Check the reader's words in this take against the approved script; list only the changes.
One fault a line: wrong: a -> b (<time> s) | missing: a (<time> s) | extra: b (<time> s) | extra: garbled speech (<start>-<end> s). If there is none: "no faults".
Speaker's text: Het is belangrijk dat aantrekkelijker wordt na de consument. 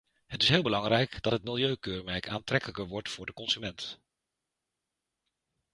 extra: heel (0.5 s)
extra: het milieukeurmerk (1.3 s)
wrong: na -> voor (3.1 s)